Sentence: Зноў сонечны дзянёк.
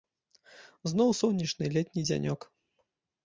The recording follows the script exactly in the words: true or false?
false